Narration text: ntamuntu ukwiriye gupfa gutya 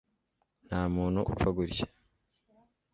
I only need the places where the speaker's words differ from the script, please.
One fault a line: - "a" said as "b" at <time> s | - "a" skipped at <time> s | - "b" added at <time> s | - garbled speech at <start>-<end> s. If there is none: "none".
- "ukwiriye" skipped at 1.2 s